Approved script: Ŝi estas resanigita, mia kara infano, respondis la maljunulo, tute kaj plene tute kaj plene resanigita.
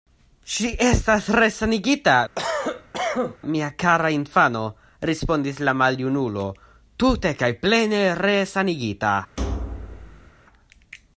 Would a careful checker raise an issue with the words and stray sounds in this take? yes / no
yes